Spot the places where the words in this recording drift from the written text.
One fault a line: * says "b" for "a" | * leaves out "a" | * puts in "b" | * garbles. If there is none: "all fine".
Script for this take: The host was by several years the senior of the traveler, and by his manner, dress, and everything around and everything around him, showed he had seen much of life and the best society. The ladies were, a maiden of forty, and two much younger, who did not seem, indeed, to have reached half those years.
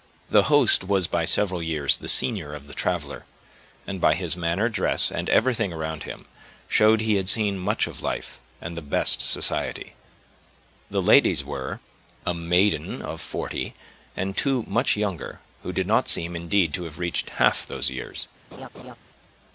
* leaves out "and everything around"